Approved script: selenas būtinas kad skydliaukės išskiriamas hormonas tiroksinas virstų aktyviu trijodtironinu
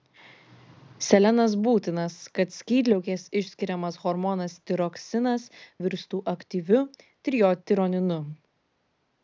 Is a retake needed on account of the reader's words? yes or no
no